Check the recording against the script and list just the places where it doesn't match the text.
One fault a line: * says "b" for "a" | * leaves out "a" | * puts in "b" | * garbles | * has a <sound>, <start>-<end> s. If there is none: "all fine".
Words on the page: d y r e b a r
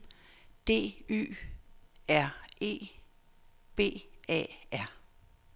all fine